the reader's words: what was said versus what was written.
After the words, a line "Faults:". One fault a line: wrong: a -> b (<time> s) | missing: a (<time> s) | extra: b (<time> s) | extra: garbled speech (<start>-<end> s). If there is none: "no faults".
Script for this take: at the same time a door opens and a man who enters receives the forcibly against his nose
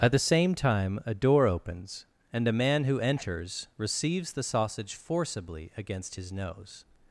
at the same time a door opens and a man who enters receives the sausage forcibly against his nose
Faults:
extra: sausage (4.4 s)